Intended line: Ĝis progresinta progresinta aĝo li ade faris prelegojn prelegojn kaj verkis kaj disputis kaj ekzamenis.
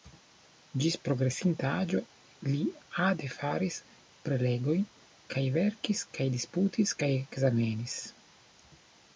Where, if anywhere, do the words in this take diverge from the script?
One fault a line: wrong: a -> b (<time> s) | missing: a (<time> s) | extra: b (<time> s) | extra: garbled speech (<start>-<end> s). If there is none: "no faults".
missing: progresinta (1.7 s)
missing: prelegojn (4.8 s)